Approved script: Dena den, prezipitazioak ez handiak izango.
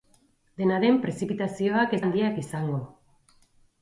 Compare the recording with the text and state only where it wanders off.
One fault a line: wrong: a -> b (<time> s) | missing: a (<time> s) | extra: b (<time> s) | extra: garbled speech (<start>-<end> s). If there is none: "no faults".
no faults